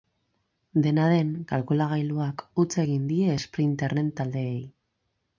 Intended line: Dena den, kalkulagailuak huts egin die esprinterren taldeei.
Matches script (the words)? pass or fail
pass